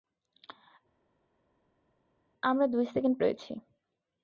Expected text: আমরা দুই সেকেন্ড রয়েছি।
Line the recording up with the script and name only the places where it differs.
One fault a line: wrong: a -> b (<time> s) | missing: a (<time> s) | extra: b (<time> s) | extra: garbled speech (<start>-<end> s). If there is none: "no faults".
no faults